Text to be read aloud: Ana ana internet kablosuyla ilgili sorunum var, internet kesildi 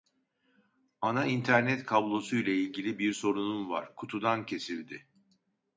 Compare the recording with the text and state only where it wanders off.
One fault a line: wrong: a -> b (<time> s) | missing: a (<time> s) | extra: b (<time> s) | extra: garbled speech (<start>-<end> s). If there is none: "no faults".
missing: ana (1.2 s)
extra: bir (3.0 s)
wrong: internet -> kutudan (3.9 s)